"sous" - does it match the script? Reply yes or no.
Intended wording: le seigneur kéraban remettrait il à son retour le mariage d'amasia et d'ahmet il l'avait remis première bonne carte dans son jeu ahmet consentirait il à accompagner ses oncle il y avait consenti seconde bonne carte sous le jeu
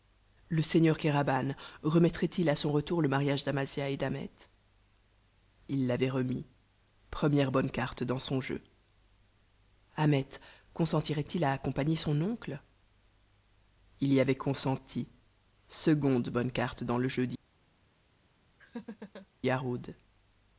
no